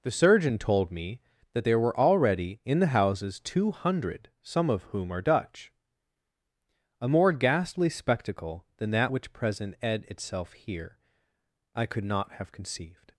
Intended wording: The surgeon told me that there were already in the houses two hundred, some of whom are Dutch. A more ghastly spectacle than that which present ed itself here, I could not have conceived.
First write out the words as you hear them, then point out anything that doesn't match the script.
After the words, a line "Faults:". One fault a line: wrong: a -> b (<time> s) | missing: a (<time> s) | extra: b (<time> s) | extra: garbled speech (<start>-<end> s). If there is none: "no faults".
The surgeon told me that there were already in the houses two hundred, some of whom are Dutch. A more ghastly spectacle than that which present ed itself here, I could not have conceived.
Faults:
no faults